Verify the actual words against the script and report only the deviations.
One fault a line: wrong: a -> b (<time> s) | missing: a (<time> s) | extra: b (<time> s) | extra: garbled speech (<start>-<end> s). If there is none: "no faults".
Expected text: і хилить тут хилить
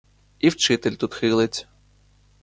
wrong: хилить -> вчитель (0.5 s)